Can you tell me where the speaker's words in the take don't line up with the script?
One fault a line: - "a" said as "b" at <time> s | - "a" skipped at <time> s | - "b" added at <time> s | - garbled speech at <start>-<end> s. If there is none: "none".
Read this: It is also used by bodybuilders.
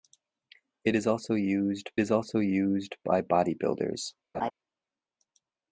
- "is also used" added at 2.0 s